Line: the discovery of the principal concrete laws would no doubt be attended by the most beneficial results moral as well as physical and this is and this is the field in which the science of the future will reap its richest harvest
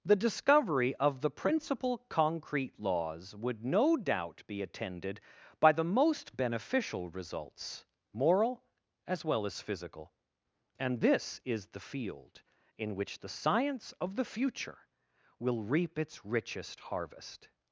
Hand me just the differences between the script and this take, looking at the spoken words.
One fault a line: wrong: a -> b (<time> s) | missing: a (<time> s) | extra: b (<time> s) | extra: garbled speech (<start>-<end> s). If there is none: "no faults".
missing: and this is (11.7 s)